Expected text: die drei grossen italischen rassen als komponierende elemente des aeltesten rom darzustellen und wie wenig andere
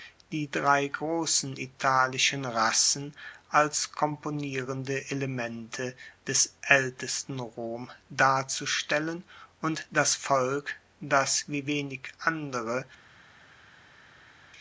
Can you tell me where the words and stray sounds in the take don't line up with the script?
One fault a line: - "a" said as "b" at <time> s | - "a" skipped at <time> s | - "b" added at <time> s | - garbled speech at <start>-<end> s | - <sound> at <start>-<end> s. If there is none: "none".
- "das volk das" added at 9.9 s